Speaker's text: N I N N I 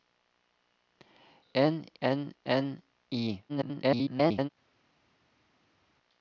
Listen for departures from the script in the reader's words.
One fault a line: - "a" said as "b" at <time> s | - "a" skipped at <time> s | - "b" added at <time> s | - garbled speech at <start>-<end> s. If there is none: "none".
- "I" skipped at 1.9 s
- garbled speech at 3.5-4.5 s